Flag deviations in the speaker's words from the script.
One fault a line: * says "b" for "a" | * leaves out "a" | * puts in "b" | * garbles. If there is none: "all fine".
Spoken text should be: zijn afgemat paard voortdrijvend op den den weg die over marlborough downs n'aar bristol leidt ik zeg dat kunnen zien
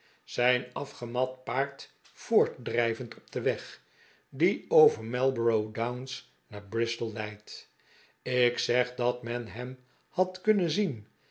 * leaves out "den"
* puts in "men hem had"